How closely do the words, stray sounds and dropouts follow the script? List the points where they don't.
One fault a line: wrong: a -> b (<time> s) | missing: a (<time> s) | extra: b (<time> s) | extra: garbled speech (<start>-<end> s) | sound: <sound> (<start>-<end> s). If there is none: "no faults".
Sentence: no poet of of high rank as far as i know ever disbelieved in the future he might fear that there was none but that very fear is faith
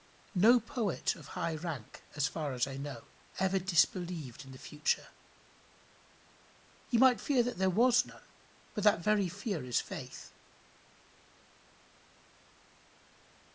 missing: of (1.3 s)